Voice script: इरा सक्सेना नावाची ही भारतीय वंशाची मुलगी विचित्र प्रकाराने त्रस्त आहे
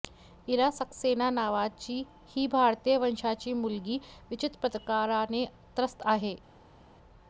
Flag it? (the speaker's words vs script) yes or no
no